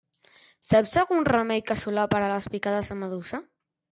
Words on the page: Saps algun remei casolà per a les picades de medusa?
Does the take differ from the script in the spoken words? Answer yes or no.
no